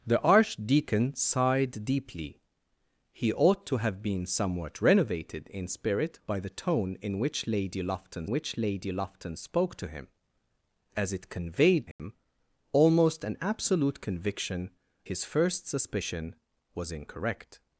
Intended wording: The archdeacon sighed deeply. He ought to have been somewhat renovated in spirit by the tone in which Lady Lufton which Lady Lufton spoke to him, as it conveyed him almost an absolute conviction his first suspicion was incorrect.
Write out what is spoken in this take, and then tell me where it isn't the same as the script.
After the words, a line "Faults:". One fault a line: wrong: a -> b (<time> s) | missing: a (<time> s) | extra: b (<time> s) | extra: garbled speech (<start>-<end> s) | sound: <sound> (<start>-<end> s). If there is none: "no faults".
The archdeacon sighed deeply. He ought to have been somewhat renovated in spirit by the tone in which Lady Lufton which Lady Lufton spoke to him, as it conveyed him almost an absolute conviction his first suspicion was incorrect.
Faults:
sound: dropout (11.9-12.0 s)